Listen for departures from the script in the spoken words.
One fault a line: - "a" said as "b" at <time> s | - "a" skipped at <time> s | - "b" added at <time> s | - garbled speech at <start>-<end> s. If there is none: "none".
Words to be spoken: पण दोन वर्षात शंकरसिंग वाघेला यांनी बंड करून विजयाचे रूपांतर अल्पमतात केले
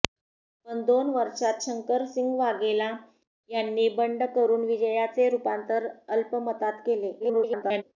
- garbled speech at 7.2-7.8 s